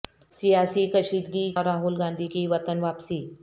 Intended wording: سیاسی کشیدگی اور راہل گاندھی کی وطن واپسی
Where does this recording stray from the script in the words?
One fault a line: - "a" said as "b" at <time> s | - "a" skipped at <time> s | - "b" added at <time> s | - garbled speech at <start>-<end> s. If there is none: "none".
none